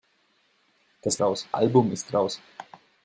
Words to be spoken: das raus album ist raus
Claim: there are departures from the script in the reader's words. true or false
false